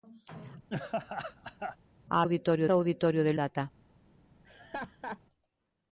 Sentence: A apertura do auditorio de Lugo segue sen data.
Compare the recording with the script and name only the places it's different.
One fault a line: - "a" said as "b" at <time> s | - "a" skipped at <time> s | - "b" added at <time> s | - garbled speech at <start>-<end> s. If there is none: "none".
- "apertura" said as "auditorio" at 2.2 s
- "Lugo segue sen" skipped at 3.3 s